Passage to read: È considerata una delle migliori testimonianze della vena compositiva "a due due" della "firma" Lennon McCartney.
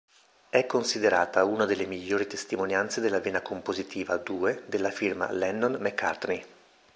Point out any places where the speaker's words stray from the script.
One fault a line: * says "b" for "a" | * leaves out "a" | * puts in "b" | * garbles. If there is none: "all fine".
* leaves out "due"